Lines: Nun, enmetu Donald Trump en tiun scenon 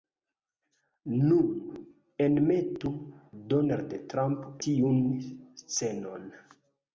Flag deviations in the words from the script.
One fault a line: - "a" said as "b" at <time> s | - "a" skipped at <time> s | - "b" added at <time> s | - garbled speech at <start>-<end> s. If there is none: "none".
- "en" skipped at 4.5 s